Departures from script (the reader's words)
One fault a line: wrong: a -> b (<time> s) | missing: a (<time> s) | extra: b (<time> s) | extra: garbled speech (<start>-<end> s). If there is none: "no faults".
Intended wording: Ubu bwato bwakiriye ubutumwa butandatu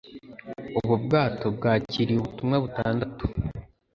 no faults